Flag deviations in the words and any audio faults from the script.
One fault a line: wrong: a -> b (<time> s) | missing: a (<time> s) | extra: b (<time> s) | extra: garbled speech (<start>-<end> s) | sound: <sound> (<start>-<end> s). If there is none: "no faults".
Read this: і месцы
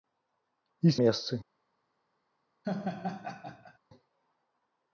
sound: laugh (2.6-3.8 s)